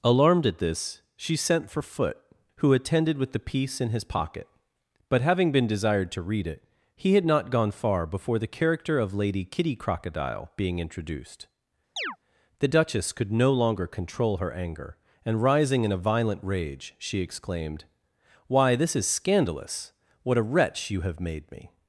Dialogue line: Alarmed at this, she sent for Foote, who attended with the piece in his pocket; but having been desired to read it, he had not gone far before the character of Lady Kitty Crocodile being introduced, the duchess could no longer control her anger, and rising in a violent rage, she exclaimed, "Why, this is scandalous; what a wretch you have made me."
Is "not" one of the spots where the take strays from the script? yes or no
no